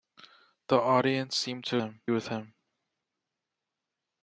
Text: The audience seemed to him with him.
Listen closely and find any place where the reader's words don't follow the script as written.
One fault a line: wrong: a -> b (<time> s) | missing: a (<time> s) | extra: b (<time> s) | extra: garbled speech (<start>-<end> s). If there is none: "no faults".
no faults